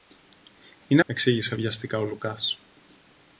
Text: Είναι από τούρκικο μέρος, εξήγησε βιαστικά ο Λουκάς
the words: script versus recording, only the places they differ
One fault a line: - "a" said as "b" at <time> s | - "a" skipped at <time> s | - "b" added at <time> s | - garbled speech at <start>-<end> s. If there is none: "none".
- "από τούρκικο μέρος" skipped at 1.0 s